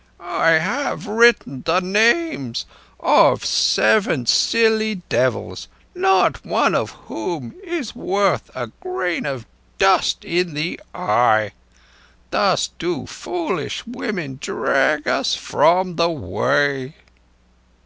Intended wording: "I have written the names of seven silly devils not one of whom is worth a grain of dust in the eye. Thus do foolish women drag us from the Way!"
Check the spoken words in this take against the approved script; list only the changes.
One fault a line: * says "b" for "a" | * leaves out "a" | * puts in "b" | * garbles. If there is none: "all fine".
all fine